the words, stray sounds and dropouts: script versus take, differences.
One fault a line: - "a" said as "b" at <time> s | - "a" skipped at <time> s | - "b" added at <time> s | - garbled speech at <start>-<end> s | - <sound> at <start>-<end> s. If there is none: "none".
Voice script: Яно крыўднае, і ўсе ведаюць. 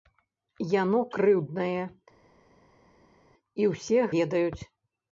none